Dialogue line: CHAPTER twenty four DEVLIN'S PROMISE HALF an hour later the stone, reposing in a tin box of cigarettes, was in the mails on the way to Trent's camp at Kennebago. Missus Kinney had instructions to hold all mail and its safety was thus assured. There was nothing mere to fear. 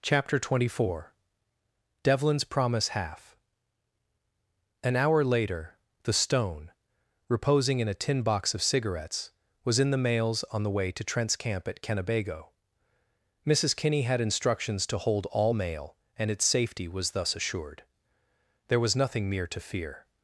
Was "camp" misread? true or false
false